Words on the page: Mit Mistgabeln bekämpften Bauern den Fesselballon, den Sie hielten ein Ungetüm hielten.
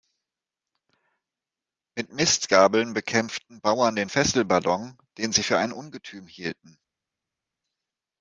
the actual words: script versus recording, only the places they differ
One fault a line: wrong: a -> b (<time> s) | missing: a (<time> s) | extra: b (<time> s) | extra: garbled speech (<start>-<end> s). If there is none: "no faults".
wrong: hielten -> für (5.4 s)